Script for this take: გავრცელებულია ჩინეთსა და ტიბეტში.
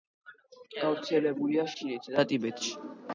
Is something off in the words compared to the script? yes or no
no